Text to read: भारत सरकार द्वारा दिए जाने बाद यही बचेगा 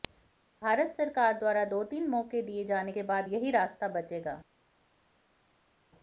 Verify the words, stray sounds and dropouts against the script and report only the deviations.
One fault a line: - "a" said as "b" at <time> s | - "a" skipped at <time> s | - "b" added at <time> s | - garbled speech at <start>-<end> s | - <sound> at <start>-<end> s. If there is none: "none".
- "दो तीन मौके" added at 1.7 s
- "के" added at 2.9 s
- "रास्ता" added at 3.5 s